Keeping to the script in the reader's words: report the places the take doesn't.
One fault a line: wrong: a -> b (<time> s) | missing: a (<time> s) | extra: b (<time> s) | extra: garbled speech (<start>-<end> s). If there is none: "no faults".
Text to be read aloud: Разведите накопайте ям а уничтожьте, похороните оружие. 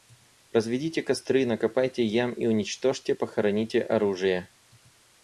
extra: костры (1.0 s)
wrong: а -> и (2.3 s)